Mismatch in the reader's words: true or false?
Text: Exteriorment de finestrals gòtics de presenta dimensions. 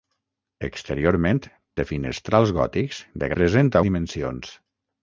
false